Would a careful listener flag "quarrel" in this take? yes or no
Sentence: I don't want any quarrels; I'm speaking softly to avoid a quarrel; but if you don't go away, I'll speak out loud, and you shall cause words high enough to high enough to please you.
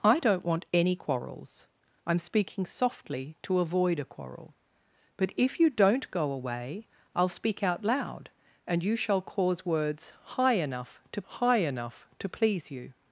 no